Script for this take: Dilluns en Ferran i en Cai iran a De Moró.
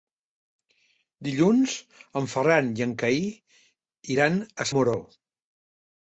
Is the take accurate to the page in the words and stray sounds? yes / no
yes